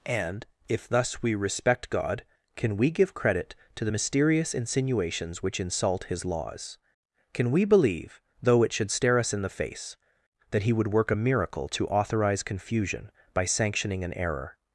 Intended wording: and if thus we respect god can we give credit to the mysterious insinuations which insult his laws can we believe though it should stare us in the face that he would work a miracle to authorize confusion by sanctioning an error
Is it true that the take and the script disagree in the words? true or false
false